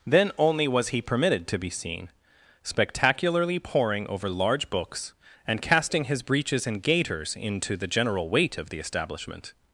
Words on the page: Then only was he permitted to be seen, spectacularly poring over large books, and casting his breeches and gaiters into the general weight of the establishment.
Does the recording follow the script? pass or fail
pass